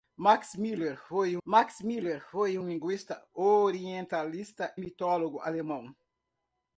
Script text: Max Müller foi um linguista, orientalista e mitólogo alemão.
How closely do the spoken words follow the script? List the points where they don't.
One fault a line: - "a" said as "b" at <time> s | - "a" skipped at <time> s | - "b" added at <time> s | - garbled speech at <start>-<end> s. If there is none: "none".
- "max Müller foi" added at 1.4 s
- "e" skipped at 4.8 s